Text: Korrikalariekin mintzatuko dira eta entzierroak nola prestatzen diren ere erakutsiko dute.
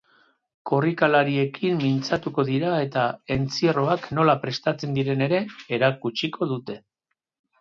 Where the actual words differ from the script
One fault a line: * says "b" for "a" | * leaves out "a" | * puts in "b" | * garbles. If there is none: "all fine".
all fine